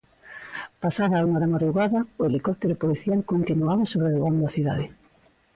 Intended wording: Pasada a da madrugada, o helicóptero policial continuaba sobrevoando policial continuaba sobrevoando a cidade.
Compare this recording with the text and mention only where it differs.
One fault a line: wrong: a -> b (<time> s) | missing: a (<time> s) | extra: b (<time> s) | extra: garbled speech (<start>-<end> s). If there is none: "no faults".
extra: unha (1.3 s)
missing: policial continuaba sobrevoando (4.4 s)